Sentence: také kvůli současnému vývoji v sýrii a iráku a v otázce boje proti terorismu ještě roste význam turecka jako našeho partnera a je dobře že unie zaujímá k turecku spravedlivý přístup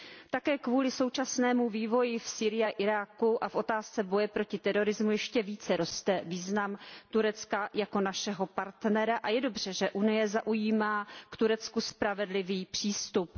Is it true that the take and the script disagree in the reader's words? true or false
true